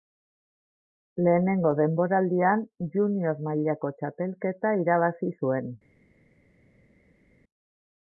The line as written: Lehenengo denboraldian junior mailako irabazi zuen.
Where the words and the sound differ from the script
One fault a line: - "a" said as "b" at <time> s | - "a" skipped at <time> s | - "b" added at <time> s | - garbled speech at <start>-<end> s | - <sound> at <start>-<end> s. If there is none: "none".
- "txapelketa" added at 4.0 s